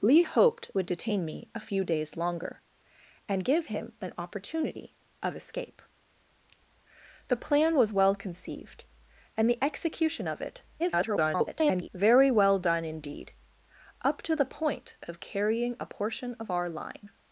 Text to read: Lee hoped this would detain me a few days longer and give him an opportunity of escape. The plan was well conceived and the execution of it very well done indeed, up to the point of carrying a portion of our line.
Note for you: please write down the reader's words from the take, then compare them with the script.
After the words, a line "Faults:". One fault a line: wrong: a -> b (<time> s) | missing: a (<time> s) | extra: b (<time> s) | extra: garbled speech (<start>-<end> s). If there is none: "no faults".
Lee hoped would detain me a few days longer and give him an opportunity of escape. The plan was well conceived and the execution of it [garbled] very well done indeed, up to the point of carrying a portion of our line.
Faults:
missing: this (0.7 s)
extra: garbled speech (10.8-11.9 s)